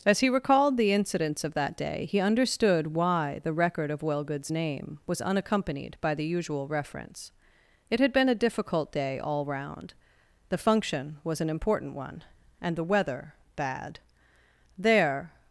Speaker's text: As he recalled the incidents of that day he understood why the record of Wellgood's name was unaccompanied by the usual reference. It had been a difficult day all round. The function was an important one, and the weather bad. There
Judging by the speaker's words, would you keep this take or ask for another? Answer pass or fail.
pass